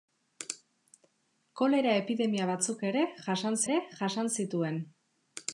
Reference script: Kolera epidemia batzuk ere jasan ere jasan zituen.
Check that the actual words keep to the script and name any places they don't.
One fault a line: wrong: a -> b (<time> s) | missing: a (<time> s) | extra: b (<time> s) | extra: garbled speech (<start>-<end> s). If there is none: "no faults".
no faults